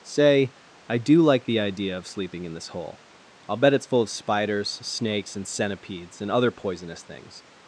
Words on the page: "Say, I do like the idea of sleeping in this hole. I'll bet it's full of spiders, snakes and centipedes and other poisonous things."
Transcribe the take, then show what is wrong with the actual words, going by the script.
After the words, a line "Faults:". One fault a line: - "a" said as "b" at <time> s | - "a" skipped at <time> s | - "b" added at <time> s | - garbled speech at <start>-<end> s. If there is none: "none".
"Say, I do like the idea of sleeping in this hole. I'll bet it's full of spiders, snakes and centipedes and other poisonous things."
Faults:
none